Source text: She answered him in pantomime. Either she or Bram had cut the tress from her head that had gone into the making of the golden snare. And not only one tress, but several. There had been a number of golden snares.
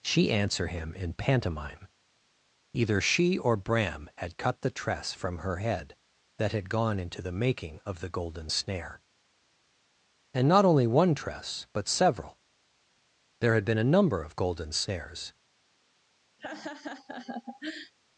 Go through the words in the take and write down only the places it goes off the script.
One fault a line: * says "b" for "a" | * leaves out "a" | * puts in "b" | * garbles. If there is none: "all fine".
* says "answer" for "answered"